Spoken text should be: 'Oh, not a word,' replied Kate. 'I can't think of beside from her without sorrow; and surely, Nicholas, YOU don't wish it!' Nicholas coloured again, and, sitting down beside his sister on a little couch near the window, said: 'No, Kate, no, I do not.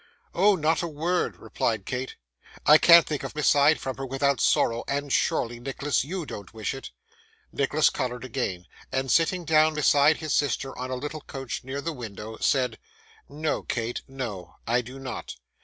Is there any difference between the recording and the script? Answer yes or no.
no